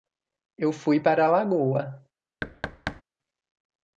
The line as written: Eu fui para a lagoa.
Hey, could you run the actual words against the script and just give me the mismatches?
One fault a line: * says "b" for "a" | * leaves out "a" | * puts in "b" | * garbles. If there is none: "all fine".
all fine